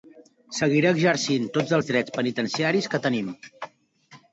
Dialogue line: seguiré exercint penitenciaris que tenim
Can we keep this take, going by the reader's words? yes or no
no